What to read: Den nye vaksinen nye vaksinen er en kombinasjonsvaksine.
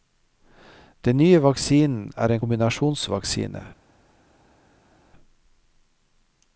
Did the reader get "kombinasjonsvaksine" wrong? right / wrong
right